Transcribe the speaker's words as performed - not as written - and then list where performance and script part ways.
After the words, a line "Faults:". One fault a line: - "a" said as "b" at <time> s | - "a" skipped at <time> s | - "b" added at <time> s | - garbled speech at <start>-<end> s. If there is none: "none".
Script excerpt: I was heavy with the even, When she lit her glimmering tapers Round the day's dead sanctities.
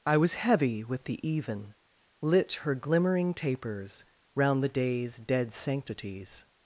I was heavy with the even, lit her glimmering tapers Round the day's dead sanctities.
Faults:
- "When she" skipped at 1.8 s